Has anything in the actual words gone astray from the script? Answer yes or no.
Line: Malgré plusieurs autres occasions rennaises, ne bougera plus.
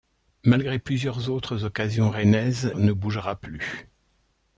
no